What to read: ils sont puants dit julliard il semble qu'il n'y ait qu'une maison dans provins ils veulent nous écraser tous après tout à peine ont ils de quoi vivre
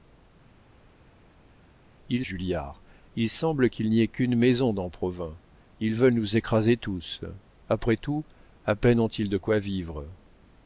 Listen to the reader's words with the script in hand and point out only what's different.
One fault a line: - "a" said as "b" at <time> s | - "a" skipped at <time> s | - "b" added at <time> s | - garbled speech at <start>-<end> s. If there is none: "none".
- "sont puants dit" skipped at 2.2 s